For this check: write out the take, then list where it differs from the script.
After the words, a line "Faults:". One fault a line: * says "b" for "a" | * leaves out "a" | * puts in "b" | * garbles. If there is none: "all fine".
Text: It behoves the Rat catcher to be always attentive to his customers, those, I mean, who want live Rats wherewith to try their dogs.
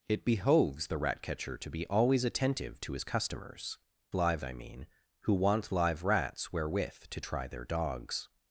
It behoves the Rat catcher to be always attentive to his customers, live, I mean, who want live Rats wherewith to try their dogs.
Faults:
* says "live" for "those"